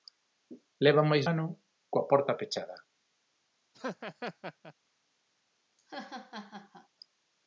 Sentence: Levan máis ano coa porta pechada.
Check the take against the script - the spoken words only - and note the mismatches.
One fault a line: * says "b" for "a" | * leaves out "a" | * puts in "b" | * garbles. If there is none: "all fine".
all fine